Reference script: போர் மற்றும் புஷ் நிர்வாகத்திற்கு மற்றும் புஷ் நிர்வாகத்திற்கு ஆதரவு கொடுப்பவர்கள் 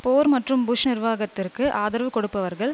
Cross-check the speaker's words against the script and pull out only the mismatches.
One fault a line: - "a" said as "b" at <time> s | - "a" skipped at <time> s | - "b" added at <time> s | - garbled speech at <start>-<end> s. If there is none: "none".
- "மற்றும் புஷ் நிர்வாகத்திற்கு" skipped at 1.6 s